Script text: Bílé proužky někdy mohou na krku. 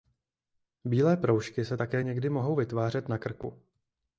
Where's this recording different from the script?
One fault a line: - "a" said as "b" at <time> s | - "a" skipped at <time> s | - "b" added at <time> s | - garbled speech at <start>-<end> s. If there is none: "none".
- "se také" added at 1.6 s
- "vytvářet" added at 2.5 s